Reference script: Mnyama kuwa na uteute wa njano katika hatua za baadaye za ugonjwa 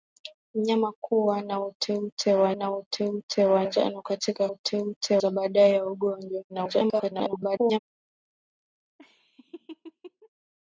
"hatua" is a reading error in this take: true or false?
true